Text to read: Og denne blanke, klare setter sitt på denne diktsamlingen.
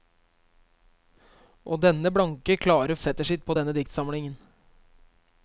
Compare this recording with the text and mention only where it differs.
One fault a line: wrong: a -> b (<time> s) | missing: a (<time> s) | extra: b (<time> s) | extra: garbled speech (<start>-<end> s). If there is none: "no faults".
no faults